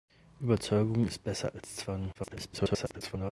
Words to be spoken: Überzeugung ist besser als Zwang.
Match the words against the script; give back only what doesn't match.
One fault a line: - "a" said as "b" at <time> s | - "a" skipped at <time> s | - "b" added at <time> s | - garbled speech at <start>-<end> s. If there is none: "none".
- garbled speech at 2.1-3.3 s